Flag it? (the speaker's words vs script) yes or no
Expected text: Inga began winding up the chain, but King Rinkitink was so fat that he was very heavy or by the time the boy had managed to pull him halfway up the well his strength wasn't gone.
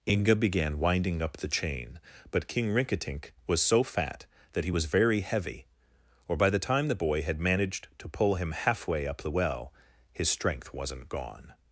no